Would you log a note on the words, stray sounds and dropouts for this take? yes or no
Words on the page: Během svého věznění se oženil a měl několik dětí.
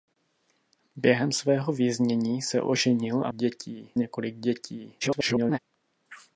yes